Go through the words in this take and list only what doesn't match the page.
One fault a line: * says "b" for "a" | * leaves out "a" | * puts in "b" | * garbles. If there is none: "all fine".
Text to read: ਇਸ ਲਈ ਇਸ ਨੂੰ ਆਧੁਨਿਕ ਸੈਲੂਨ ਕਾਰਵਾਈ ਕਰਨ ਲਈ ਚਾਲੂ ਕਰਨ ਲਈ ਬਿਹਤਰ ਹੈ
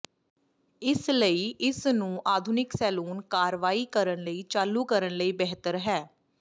all fine